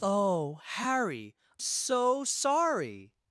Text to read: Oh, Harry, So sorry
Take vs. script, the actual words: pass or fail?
pass